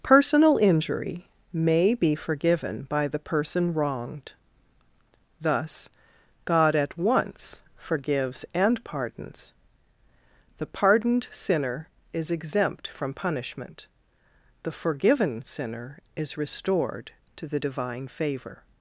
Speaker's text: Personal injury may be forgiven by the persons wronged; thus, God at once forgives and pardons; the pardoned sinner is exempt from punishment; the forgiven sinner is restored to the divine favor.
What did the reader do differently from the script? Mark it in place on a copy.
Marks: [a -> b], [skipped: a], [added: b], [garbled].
Personal injury may be forgiven by the [persons -> person] wronged; thus, God at once forgives and pardons; the pardoned sinner is exempt from punishment; the forgiven sinner is restored to the divine favor.